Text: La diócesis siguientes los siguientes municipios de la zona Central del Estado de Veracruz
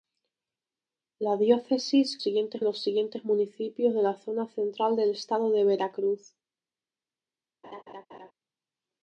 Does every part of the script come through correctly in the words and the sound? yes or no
no